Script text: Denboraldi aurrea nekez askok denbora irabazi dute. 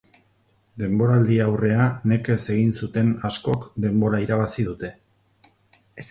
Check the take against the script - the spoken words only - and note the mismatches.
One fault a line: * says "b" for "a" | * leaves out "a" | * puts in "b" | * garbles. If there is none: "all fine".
* puts in "egin zuten"